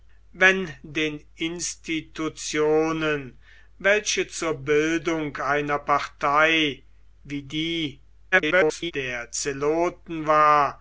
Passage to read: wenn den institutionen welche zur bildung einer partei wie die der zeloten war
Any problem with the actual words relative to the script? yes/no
yes